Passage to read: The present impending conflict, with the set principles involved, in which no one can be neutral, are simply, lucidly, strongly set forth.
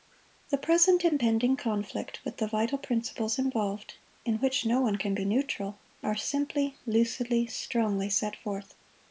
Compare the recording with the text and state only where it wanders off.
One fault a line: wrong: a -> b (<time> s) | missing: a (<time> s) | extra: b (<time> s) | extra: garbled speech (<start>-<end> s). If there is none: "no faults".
wrong: set -> vital (2.5 s)